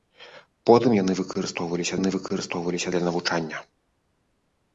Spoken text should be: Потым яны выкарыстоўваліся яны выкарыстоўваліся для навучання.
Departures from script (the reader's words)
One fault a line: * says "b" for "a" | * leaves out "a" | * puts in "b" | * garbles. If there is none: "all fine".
all fine